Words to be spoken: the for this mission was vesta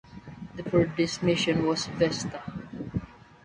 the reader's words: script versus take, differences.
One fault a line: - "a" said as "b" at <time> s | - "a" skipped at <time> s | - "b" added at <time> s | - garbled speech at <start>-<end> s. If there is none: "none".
none